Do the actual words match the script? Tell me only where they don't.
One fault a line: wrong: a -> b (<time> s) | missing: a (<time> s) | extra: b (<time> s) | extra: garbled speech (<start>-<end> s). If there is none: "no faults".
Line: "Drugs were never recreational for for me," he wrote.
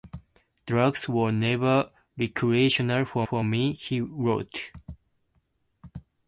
no faults